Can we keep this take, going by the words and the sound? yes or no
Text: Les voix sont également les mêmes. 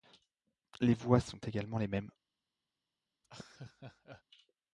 no